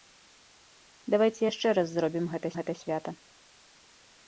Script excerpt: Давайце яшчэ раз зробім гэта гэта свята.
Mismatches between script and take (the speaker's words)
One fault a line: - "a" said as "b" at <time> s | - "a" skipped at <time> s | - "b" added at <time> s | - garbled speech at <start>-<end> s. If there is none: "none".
none